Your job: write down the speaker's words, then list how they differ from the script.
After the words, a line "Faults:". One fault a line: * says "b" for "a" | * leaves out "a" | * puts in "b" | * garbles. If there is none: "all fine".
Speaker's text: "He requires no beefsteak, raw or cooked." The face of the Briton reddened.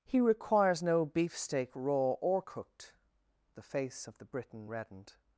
"He requires no beefsteak, raw or cooked." The face of the Briton reddened.
Faults:
all fine